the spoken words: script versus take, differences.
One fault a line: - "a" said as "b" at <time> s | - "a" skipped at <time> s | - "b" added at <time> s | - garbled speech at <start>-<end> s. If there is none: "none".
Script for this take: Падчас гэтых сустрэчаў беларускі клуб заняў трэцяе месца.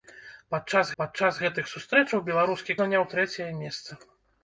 - "падчас" added at 1.0 s
- "клуб" skipped at 2.8 s